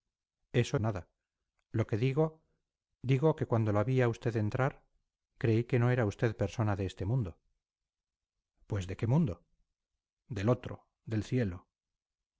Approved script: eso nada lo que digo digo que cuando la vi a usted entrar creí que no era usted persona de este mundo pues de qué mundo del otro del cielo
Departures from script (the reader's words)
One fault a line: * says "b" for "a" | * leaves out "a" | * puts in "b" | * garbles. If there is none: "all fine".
all fine